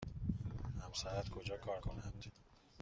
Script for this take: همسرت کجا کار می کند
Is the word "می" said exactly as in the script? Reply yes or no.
no